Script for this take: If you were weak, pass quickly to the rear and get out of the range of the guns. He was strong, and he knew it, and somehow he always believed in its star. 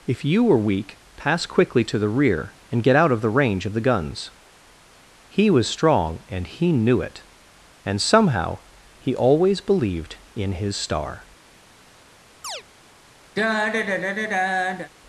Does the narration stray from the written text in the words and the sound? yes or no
yes